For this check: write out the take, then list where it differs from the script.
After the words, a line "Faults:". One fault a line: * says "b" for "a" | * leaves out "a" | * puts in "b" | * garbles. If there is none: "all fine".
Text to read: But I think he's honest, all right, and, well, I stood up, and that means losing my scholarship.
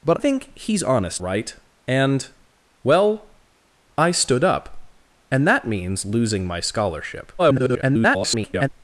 But think he's honest, right, and, well, I stood up, and that means losing my scholarship. [garbled]
Faults:
* leaves out "I"
* leaves out "all"
* garbles